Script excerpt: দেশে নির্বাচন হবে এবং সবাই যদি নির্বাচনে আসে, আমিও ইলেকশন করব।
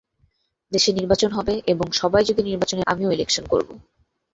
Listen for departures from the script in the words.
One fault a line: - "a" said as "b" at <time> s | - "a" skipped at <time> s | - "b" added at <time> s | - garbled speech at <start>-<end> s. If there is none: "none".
- "আসে" skipped at 2.8 s